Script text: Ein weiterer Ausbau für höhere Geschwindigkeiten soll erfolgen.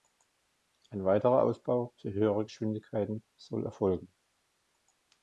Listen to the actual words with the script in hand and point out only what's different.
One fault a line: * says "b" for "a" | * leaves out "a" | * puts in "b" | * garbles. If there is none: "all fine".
all fine